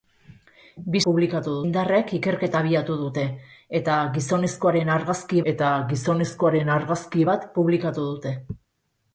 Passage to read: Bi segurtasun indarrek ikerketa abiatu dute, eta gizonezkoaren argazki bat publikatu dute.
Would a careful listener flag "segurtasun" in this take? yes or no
yes